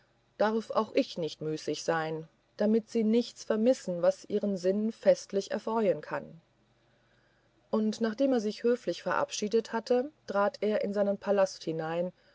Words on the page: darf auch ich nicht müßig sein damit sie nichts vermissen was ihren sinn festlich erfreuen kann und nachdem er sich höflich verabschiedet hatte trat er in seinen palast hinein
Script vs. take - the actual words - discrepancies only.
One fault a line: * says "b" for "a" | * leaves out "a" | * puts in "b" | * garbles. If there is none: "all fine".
all fine